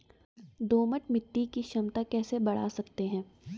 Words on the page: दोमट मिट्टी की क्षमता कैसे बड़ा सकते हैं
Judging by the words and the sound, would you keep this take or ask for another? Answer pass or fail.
pass